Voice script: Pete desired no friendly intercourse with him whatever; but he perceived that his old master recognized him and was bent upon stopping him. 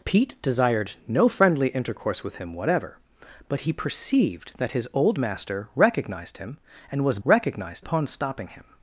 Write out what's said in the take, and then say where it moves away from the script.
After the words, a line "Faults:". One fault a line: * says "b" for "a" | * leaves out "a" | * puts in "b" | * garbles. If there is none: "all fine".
Pete desired no friendly intercourse with him whatever; but he perceived that his old master recognized him and was recognized upon stopping him.
Faults:
* says "recognized" for "bent"